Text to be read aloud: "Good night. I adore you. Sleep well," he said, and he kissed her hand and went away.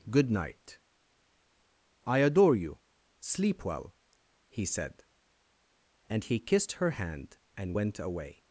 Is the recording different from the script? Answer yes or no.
no